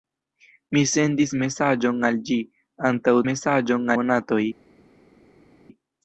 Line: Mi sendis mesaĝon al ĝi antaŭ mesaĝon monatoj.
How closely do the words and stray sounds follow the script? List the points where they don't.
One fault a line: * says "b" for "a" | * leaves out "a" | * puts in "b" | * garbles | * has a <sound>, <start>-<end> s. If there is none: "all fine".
all fine